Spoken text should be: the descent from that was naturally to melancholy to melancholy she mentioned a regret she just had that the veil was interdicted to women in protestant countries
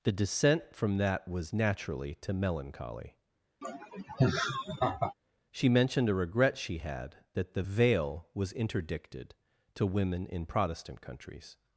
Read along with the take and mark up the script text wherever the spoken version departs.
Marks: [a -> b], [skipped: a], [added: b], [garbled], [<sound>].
the descent from that was naturally to melancholy [skipped: to melancholy] [laugh] she mentioned a regret she [skipped: just] had that the veil was interdicted to women in protestant countries